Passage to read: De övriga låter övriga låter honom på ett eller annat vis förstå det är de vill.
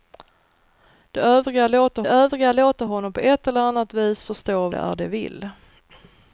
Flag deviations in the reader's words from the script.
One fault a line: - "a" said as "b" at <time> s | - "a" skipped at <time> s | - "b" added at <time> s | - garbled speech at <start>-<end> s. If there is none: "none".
none